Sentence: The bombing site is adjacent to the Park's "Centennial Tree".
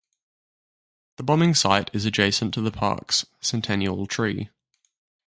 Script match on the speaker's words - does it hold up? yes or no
yes